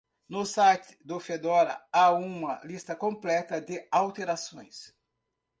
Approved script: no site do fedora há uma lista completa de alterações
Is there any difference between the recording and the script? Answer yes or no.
no